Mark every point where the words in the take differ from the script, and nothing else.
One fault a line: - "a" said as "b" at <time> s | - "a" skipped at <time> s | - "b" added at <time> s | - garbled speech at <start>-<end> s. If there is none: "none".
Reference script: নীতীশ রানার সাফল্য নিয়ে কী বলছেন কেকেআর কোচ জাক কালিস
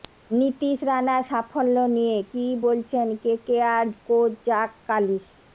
none